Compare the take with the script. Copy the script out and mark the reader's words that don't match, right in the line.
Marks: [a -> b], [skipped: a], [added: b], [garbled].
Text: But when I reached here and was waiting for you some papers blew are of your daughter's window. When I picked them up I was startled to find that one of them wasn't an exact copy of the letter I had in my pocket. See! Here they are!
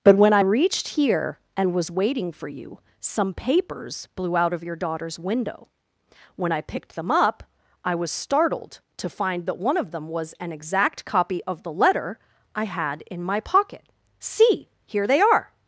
But when I reached here and was waiting for you some papers blew [are -> out] of your daughter's window. When I picked them up I was startled to find that one of them [wasn't -> was] an exact copy of the letter I had in my pocket. See! Here they are!